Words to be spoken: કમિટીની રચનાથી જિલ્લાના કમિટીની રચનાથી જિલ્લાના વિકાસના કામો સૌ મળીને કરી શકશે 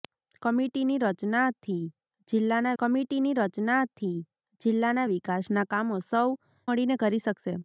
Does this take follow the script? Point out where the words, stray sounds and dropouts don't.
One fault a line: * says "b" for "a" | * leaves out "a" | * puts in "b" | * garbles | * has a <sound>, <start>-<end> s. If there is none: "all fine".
all fine